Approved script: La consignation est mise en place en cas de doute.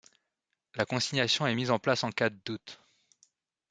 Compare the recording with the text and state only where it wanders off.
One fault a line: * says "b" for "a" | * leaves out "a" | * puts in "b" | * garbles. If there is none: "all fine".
all fine